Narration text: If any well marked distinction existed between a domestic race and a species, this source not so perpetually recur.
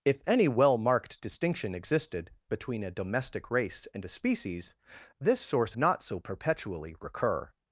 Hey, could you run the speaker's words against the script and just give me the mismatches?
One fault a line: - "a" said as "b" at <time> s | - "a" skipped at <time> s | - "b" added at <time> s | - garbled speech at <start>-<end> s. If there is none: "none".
none